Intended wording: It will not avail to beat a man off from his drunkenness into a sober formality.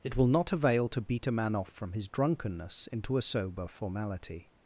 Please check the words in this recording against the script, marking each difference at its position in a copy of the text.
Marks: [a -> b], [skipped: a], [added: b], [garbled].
It will not avail to beat a man off from his drunkenness into a sober formality.